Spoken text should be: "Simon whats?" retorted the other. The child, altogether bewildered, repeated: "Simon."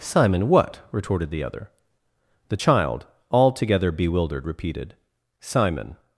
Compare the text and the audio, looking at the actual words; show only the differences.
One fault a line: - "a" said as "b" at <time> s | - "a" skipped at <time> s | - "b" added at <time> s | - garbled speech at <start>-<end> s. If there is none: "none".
- "whats" said as "what" at 0.5 s